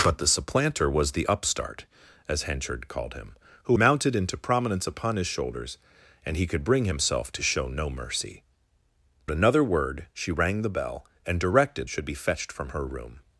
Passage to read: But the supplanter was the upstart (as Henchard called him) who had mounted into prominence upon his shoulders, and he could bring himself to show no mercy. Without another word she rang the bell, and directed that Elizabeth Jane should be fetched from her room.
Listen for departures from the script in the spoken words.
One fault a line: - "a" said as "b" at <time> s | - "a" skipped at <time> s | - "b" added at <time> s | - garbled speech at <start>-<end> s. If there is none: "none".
- "had" skipped at 3.8 s
- "Without" skipped at 8.4 s
- "that Elizabeth Jane" skipped at 11.9 s